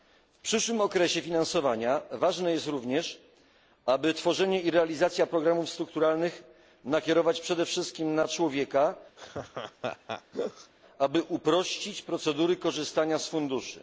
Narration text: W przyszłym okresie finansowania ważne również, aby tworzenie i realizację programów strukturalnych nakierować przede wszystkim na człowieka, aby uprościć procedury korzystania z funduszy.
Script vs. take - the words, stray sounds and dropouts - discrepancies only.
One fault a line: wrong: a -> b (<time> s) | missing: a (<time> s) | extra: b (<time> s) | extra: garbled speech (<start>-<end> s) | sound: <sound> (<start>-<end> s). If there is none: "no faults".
extra: jest (2.5 s)
sound: laugh (9.2-10.7 s)